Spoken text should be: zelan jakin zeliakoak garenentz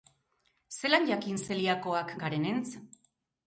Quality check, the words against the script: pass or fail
pass